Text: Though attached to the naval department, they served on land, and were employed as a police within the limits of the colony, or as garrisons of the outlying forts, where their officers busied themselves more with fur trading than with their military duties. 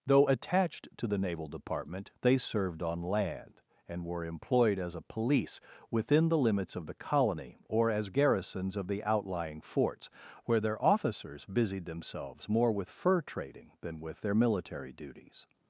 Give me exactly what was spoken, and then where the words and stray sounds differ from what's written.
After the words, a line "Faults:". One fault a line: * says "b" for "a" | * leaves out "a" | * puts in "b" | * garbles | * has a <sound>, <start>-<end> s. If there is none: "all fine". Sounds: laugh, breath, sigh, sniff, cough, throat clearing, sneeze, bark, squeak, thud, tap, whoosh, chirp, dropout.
Though attached to the naval department, they served on land, and were employed as a police within the limits of the colony, or as garrisons of the outlying forts, where their officers busied themselves more with fur trading than with their military duties.
Faults:
all fine